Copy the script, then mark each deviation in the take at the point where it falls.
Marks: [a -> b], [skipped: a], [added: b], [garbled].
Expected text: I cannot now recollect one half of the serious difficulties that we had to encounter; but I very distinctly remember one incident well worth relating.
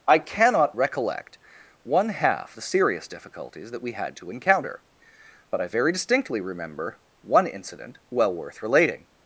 I cannot [skipped: now] recollect one half [skipped: of] the serious difficulties that we had to encounter; but I very distinctly remember one incident well worth relating.